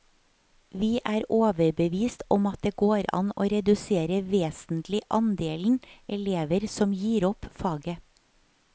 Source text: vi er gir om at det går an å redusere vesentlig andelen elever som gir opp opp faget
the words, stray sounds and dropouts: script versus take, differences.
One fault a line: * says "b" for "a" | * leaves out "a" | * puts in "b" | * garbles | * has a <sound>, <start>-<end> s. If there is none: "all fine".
* says "overbevist" for "gir"
* leaves out "opp"